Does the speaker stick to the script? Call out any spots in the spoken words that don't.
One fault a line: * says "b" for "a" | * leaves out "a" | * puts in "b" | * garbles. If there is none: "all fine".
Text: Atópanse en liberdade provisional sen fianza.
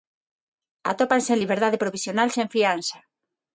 all fine